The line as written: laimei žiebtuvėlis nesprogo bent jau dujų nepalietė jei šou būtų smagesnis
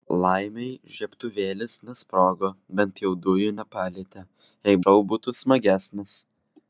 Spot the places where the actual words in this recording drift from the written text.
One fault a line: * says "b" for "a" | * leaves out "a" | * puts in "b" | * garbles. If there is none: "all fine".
all fine